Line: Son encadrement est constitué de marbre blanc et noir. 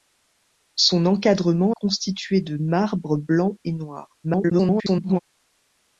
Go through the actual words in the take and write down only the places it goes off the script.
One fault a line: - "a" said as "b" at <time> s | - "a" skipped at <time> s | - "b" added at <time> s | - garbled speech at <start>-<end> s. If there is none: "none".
- "est" skipped at 1.8 s
- garbled speech at 4.2-5.2 s